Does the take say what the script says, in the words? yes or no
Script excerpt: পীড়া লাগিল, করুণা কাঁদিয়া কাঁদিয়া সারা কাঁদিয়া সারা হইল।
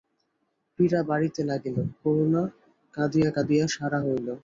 no